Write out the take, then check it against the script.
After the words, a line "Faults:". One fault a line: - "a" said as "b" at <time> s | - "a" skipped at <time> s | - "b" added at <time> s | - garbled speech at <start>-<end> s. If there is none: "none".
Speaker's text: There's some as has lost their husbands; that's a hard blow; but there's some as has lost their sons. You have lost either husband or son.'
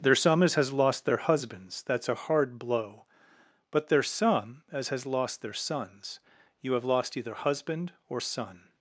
There's some as has lost their husbands; that's a hard blow; but there's some as has lost their sons. You have lost either husband or son.'
Faults:
none